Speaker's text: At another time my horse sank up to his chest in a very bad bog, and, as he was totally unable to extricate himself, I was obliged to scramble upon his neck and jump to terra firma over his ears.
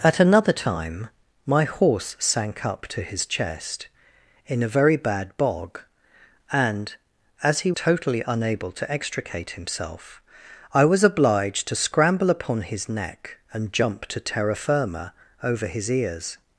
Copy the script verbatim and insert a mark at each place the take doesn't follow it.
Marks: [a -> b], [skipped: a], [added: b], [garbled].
At another time my horse sank up to his chest in a very bad bog, and, as he [skipped: was] totally unable to extricate himself, I was obliged to scramble upon his neck and jump to terra firma over his ears.